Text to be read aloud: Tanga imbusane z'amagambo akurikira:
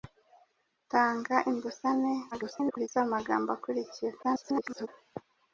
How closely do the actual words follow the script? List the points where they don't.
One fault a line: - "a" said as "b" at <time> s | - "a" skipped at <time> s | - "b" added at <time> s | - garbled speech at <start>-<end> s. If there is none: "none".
- garbled speech at 2.3-2.9 s
- garbled speech at 4.2-4.9 s